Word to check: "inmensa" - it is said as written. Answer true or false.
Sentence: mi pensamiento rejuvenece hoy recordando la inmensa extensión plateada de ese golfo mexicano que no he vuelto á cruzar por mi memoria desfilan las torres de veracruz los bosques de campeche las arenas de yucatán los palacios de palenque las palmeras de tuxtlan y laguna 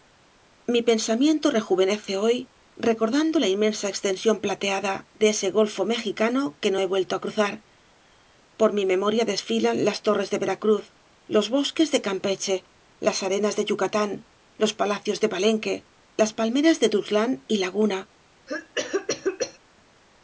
true